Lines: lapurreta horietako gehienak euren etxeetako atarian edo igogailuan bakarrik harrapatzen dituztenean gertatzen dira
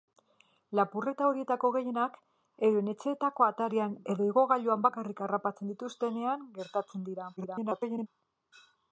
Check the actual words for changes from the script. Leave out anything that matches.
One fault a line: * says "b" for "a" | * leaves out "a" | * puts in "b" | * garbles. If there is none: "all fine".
* garbles